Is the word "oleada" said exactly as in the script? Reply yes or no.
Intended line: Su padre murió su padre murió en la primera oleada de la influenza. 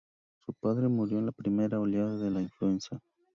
yes